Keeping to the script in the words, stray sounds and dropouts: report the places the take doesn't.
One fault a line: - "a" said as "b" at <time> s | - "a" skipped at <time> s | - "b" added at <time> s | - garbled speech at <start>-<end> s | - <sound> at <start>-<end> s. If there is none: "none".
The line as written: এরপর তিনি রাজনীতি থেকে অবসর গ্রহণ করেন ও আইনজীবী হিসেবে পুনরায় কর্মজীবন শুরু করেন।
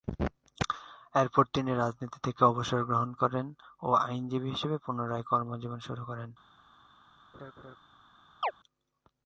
- laugh at 7.3-7.8 s
- chirp at 8.4-8.5 s